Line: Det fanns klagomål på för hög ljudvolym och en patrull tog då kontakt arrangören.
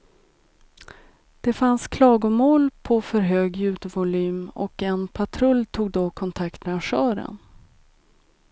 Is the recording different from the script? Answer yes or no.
no